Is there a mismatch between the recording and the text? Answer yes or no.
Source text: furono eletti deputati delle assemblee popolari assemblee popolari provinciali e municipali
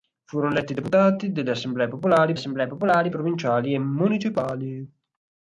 no